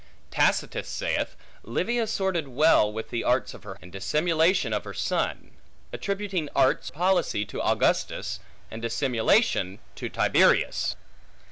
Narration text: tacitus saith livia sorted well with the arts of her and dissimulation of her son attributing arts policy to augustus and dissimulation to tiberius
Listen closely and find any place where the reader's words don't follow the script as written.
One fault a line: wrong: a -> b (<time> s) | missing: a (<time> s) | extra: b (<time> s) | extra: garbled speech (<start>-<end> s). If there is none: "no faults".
no faults